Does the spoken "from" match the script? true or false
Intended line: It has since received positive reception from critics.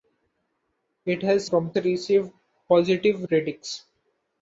false